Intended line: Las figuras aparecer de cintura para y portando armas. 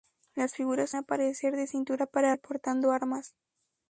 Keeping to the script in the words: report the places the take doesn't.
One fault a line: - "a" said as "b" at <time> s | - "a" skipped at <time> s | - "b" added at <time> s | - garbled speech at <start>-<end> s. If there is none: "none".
none